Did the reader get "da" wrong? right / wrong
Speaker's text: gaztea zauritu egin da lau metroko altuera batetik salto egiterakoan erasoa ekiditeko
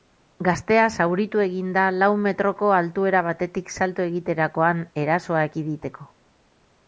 right